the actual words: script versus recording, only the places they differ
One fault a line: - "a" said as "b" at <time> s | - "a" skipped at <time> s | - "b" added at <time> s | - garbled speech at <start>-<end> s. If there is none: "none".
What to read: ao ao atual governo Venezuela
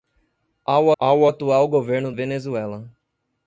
none